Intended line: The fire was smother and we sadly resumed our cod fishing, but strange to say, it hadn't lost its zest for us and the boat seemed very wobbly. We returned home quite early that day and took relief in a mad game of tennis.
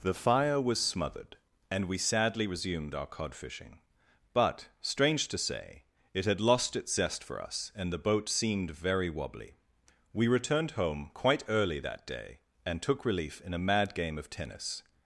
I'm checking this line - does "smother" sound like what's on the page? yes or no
no